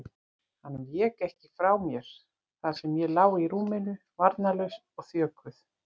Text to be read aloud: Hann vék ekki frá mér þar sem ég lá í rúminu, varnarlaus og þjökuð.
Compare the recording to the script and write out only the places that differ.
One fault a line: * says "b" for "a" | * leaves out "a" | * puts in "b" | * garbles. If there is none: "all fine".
all fine